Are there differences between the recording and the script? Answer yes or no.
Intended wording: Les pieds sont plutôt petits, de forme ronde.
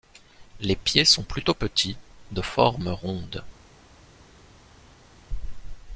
no